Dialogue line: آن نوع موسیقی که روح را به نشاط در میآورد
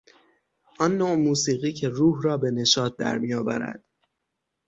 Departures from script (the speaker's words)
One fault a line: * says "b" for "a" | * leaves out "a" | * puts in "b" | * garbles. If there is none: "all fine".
all fine